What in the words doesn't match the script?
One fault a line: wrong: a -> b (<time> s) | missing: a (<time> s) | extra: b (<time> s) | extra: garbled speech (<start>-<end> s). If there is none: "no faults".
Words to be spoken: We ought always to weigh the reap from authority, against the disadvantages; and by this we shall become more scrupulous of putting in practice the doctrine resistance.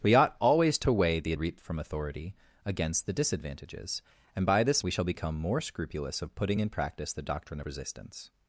no faults